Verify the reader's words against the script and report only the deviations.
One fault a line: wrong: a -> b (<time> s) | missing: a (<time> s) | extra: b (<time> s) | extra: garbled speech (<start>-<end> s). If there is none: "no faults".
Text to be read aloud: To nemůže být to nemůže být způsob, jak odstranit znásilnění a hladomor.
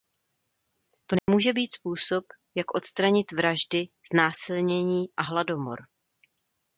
missing: to nemůže být (1.7 s)
extra: vraždy (3.3 s)